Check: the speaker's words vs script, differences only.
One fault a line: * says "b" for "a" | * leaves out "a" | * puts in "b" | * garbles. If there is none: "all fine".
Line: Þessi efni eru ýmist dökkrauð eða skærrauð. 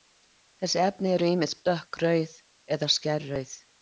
all fine